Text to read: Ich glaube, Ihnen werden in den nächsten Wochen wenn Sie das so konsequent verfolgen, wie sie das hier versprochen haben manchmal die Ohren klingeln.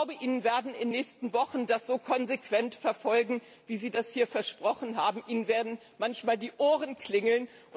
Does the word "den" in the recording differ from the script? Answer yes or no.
yes